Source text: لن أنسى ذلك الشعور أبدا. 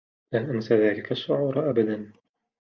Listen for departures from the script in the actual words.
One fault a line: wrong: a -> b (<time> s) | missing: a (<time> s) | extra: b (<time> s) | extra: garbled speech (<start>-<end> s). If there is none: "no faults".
no faults